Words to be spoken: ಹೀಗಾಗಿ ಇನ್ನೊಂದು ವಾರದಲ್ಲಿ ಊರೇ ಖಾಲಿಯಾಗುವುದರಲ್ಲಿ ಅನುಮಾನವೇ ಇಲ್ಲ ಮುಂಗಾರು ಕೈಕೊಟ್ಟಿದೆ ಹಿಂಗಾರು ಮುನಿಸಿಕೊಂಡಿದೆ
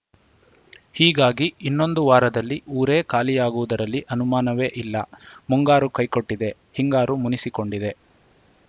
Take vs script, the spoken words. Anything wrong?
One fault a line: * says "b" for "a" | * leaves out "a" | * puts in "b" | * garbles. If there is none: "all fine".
all fine